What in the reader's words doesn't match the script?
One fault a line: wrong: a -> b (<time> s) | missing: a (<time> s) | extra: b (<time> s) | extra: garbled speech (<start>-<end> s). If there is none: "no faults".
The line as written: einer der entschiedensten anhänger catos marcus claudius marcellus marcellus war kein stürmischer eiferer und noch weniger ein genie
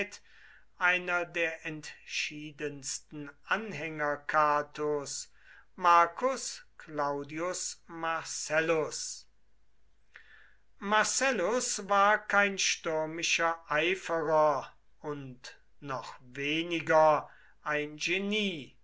no faults